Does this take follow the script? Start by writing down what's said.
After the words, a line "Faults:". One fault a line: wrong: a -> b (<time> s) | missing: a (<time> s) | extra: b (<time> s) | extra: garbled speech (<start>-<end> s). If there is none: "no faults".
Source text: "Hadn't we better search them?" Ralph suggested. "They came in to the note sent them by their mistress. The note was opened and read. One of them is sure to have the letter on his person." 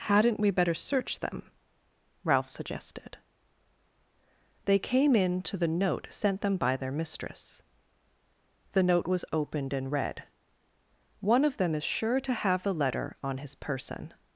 "Hadn't we better search them?" Ralph suggested. "They came in to the note sent them by their mistress. The note was opened and read. One of them is sure to have the letter on his person."
Faults:
no faults